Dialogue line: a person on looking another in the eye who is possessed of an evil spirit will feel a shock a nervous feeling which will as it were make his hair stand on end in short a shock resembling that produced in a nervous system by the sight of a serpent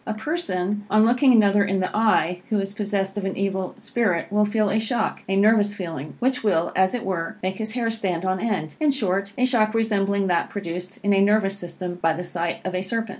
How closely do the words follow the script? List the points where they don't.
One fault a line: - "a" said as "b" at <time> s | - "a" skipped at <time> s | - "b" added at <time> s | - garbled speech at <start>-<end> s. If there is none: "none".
none